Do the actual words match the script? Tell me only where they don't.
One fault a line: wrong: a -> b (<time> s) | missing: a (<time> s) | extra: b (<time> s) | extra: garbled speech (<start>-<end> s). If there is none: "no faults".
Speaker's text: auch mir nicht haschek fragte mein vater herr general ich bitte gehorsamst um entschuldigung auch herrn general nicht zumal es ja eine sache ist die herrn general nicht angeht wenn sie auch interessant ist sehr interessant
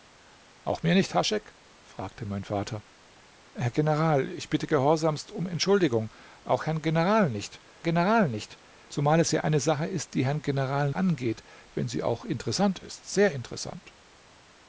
extra: general nicht (7.8 s)
missing: nicht (10.9 s)